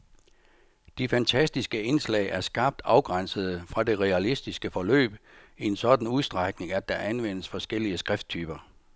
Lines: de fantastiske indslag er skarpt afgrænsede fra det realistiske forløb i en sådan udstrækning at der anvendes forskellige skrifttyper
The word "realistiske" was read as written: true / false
true